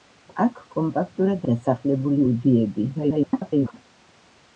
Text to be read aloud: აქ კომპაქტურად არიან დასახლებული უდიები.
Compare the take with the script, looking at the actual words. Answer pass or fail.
fail